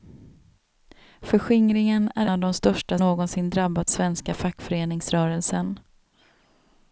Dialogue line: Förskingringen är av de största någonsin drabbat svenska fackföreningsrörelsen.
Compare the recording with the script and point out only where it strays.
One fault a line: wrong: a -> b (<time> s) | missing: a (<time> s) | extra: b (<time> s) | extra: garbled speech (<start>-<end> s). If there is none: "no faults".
no faults